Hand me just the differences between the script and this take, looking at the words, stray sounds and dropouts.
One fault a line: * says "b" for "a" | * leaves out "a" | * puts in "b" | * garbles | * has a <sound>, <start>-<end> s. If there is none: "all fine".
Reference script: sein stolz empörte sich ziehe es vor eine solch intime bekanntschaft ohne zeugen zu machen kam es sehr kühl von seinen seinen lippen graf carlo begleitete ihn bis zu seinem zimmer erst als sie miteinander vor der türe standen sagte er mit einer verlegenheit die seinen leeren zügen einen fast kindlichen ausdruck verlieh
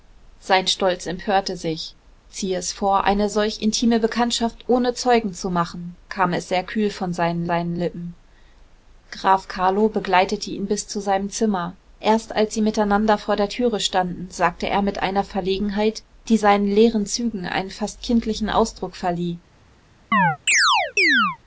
* has a chirp, 20.1-21.4 s